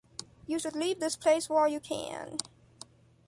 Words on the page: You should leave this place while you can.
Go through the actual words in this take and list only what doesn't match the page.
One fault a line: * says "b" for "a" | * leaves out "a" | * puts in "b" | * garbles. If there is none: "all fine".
all fine